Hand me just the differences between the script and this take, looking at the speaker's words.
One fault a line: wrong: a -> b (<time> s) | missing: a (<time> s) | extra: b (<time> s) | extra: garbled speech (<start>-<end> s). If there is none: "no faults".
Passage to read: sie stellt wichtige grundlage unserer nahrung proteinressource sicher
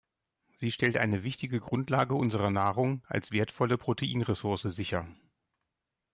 extra: eine (1.0 s)
extra: als wertvolle (3.0 s)